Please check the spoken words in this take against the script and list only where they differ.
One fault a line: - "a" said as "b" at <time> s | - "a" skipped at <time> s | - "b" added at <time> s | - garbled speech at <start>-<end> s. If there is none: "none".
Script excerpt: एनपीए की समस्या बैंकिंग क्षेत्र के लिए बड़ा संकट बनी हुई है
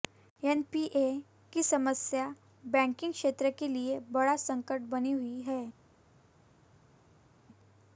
none